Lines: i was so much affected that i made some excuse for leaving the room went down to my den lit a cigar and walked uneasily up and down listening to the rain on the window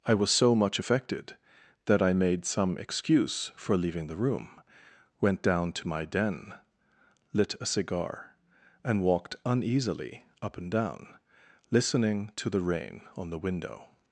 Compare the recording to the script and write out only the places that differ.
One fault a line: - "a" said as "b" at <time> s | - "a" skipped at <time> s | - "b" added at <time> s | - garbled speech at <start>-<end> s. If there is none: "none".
none